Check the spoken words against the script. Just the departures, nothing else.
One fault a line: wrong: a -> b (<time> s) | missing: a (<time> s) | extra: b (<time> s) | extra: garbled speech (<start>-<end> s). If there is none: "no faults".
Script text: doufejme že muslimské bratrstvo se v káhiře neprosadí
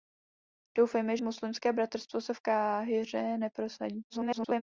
missing: že (1.2 s)
extra: garbled speech (4.1-4.6 s)